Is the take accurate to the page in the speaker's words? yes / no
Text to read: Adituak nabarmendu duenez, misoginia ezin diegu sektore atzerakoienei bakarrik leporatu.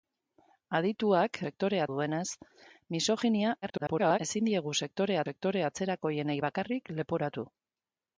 no